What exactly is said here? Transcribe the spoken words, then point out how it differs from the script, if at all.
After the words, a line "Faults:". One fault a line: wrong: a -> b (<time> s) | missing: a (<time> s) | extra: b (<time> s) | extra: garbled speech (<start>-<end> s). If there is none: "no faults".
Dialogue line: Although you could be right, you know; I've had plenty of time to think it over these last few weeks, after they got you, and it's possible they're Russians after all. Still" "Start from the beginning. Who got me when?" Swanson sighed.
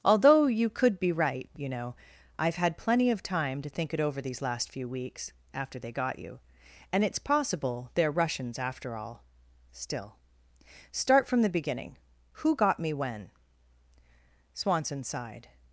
Although you could be right, you know; I've had plenty of time to think it over these last few weeks, after they got you, and it's possible they're Russians after all. Still" "Start from the beginning. Who got me when?" Swanson sighed.
Faults:
no faults